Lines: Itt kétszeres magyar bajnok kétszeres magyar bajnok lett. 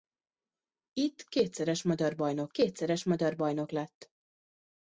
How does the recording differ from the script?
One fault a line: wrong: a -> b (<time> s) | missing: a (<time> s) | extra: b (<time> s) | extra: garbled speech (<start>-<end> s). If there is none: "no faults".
no faults